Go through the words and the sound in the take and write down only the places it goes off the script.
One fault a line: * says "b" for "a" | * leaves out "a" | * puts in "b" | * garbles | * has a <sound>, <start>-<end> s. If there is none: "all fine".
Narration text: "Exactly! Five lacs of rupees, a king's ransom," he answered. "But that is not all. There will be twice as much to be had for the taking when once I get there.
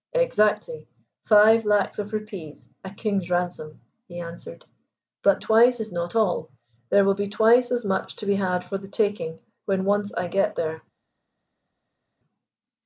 * says "twice" for "that"